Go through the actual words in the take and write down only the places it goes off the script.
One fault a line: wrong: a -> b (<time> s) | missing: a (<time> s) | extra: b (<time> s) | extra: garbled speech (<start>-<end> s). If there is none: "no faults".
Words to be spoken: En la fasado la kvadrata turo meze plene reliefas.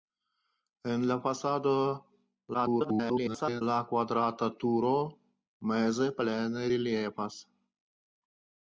extra: garbled speech (2.5-3.6 s)